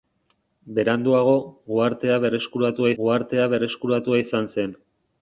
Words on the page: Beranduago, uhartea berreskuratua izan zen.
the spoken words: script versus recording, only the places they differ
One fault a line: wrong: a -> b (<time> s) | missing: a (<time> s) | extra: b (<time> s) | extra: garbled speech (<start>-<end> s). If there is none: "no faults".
extra: uhartea berreskuratua (3.0 s)